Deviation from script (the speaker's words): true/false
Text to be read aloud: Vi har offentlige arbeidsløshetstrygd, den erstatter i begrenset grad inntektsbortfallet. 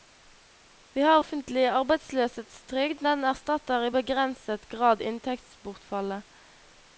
false